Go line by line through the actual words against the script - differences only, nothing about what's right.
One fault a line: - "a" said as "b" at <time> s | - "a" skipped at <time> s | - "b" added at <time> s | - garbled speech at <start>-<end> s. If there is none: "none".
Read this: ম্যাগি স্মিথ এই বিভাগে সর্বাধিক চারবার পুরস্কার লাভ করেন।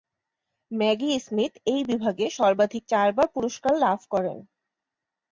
none